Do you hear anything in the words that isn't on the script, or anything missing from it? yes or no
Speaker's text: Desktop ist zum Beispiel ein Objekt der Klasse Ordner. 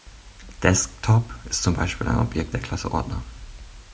no